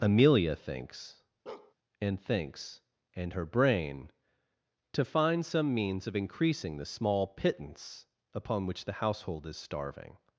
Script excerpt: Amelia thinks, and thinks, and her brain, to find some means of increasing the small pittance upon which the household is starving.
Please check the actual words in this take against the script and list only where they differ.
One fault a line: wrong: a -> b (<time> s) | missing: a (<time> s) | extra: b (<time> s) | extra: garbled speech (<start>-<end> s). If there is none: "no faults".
no faults